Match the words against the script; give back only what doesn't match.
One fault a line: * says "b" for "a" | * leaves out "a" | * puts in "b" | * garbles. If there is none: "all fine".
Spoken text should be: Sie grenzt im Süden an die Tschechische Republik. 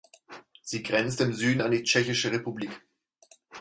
all fine